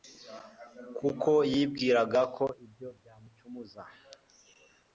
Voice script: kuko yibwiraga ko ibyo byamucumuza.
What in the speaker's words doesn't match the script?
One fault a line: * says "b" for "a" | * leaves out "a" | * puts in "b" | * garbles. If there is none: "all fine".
all fine